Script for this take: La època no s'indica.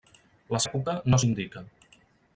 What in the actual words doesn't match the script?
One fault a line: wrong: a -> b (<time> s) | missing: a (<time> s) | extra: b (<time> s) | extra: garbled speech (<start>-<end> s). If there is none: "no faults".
no faults